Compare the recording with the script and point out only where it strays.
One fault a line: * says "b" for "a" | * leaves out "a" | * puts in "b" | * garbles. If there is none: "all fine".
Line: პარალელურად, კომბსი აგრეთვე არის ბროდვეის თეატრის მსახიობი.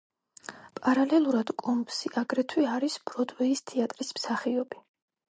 all fine